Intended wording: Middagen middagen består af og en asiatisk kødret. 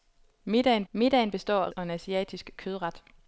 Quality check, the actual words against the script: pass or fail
pass